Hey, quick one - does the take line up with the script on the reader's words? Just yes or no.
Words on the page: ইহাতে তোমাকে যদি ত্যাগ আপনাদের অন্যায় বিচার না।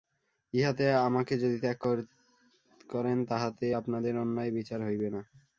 no